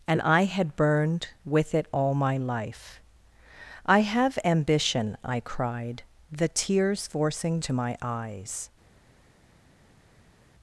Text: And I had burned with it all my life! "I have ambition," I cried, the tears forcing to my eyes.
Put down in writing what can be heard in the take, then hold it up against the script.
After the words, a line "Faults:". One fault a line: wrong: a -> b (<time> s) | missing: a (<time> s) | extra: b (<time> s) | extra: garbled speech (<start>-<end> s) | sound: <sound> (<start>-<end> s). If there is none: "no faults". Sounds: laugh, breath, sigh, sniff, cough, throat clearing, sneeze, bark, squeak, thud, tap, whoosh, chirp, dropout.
And I had burned with it all my life! "I have ambition," I cried, the tears forcing to my eyes.
Faults:
no faults